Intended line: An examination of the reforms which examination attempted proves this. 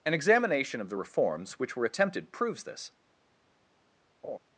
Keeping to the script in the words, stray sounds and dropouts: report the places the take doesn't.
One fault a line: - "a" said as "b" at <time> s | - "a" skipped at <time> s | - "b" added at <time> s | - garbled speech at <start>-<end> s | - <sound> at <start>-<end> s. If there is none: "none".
- "examination" said as "were" at 1.7 s
- laugh at 4.2-4.4 s